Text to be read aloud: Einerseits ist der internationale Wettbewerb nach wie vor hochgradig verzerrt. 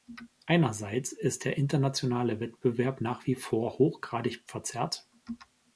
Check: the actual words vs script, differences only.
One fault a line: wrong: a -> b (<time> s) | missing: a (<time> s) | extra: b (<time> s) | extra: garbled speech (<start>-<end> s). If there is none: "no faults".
no faults